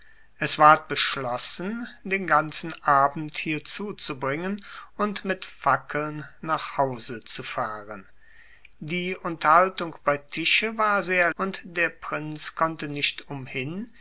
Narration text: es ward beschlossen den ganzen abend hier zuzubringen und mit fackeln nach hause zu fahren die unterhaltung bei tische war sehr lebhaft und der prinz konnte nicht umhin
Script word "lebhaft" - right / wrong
wrong